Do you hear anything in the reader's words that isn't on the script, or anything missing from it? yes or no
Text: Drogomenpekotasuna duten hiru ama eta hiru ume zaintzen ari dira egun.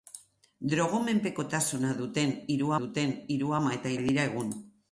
yes